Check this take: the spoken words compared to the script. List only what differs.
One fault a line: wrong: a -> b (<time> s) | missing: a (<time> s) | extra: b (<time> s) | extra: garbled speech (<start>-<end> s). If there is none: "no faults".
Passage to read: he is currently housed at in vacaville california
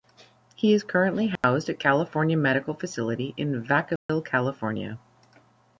extra: california medical facility (1.8 s)